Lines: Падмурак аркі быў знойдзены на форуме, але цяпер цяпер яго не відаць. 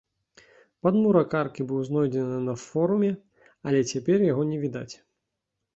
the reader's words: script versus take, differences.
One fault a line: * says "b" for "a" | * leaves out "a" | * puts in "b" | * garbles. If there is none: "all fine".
* leaves out "цяпер"